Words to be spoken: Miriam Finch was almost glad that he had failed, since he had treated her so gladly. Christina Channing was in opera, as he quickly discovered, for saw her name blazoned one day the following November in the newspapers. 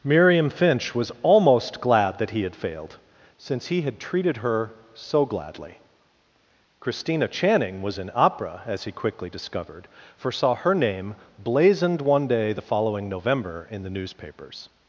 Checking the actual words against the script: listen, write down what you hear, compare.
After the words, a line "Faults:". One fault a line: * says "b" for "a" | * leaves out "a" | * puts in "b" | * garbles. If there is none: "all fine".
Miriam Finch was almost glad that he had failed, since he had treated her so gladly. Christina Channing was in opera, as he quickly discovered, for saw her name blazoned one day the following November in the newspapers.
Faults:
all fine